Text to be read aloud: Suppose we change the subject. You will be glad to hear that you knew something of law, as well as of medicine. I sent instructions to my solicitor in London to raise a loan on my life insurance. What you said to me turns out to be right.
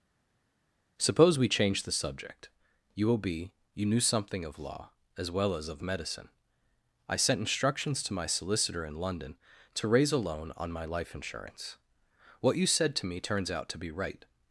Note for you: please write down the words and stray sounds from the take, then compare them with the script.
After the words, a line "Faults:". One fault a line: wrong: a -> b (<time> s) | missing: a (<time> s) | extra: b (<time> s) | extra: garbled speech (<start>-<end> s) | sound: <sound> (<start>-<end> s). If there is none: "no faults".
Suppose we change the subject. You will be you knew something of law, as well as of medicine. I sent instructions to my solicitor in London to raise a loan on my life insurance. What you said to me turns out to be right.
Faults:
missing: glad to hear that (3.5 s)